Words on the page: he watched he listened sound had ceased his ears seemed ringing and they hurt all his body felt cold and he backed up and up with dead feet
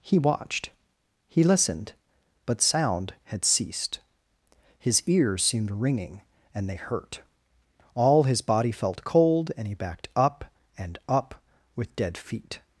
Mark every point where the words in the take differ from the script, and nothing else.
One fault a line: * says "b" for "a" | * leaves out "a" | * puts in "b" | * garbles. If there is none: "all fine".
* puts in "but"